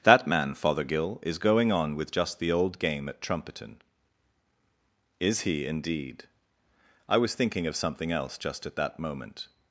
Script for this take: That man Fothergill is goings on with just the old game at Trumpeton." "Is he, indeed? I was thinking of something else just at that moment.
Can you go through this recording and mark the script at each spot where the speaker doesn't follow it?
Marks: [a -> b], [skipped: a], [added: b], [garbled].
That man Fothergill is [goings -> going] on with just the old game at Trumpeton." "Is he, indeed? I was thinking of something else just at that moment.